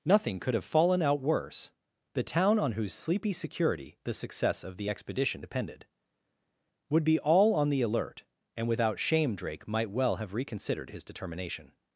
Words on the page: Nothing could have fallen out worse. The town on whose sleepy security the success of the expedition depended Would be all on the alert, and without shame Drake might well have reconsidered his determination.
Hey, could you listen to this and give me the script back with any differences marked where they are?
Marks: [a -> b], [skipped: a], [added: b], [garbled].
Nothing could have fallen out worse. The town on whose sleepy security the success of the expedition depended Would be all on the alert, and without shame Drake might well have reconsidered his determination.